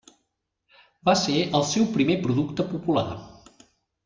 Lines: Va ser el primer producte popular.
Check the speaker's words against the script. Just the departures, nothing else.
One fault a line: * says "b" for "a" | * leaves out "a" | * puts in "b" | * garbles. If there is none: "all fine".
* puts in "seu"